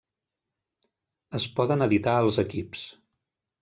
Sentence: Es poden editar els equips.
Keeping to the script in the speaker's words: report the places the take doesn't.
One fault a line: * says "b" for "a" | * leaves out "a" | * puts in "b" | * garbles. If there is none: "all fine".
all fine